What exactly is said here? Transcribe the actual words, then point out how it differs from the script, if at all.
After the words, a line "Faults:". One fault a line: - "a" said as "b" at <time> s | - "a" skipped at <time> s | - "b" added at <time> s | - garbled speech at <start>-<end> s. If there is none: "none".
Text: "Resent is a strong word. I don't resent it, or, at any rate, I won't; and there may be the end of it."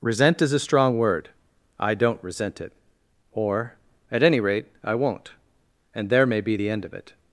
"Resent is a strong word. I don't resent it, or, at any rate, I won't; and there may be the end of it."
Faults:
none